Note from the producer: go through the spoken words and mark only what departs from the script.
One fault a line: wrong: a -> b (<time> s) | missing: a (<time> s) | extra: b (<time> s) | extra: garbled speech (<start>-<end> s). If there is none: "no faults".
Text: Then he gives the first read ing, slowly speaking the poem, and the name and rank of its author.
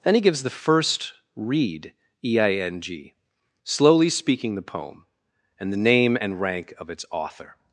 wrong: ing -> e I n g (2.2 s)